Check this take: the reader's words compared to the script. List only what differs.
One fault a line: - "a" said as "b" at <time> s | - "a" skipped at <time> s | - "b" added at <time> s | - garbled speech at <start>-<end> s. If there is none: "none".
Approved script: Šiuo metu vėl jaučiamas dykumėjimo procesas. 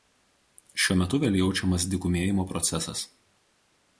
none